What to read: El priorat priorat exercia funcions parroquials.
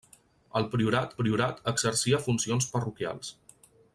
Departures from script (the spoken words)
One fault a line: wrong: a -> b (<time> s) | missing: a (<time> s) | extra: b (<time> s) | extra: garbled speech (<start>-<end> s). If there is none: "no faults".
no faults